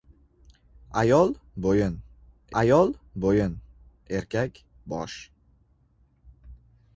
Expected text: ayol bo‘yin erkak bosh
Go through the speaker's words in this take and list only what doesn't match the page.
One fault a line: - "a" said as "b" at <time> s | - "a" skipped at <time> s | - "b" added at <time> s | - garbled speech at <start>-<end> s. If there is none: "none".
- "ayol bo‘yin" added at 2.6 s